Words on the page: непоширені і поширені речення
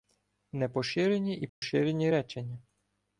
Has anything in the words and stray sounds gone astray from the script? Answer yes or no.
yes